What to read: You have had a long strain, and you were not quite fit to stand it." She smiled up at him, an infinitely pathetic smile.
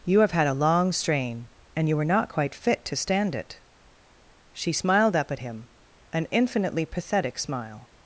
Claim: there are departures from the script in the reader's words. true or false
false